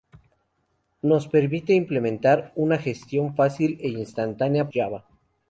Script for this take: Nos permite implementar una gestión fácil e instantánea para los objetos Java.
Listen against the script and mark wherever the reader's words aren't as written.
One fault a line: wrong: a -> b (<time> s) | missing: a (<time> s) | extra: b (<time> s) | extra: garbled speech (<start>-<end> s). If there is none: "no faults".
missing: para los objetos (4.7 s)